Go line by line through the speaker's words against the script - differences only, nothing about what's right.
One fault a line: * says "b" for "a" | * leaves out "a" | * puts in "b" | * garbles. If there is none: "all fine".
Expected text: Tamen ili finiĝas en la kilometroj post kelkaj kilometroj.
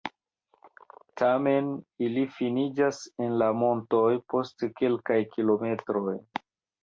* says "montoj" for "kilometroj"